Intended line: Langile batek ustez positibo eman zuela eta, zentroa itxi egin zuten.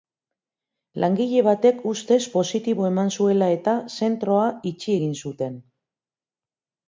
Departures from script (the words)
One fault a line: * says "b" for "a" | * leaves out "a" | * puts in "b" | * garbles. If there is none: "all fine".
all fine